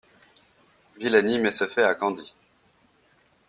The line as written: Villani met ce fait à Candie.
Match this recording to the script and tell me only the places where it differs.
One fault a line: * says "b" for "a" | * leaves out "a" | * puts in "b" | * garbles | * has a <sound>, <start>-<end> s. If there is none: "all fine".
all fine